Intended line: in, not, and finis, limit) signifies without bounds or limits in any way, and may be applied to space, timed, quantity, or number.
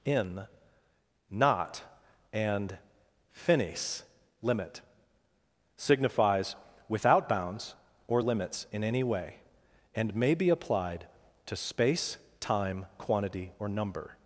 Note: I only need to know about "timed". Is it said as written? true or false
false